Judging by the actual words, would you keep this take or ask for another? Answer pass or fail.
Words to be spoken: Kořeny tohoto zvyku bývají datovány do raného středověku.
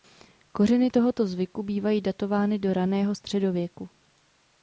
pass